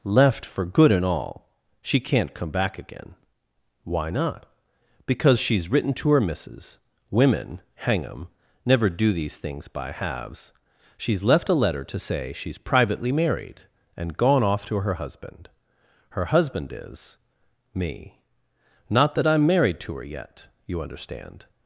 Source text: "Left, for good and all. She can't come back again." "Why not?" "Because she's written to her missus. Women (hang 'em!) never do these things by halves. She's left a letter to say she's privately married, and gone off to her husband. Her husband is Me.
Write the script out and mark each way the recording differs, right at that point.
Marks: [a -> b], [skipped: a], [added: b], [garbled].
"Left, for good and all. She can't come back again." "Why not?" "Because she's written to her missus. Women (hang 'em!) never do these things by halves. She's left a letter to say she's privately married, and gone off to her husband. Her husband is Me. [added: Not that I'm married to her yet you understand]